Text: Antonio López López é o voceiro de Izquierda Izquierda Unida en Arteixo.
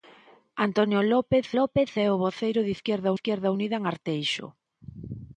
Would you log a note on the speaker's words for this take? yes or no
no